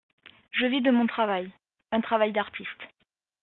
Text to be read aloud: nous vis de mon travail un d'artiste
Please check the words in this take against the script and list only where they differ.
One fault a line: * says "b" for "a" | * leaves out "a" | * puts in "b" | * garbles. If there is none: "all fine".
* says "je" for "nous"
* puts in "travail"